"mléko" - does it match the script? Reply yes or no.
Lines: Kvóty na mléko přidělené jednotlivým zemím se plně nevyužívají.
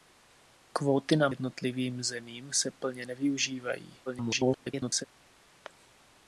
no